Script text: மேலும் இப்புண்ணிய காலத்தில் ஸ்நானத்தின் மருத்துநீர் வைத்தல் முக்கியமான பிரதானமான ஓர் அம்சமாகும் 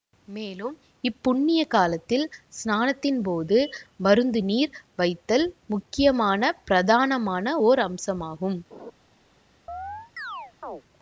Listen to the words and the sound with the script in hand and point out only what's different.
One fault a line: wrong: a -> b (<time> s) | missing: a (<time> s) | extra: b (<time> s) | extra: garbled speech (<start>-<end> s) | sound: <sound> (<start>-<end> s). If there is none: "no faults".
extra: போது (3.2 s)
sound: laugh (8.7-8.9 s)
sound: chirp (9.7-10.8 s)